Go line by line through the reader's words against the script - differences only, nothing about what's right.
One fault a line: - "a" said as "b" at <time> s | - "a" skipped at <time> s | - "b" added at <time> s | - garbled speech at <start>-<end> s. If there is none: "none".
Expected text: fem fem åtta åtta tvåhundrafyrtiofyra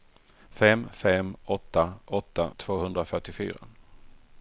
none